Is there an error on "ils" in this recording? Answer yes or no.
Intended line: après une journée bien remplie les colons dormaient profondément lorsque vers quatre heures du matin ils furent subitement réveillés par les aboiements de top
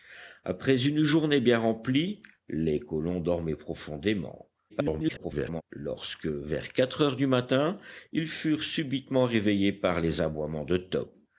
no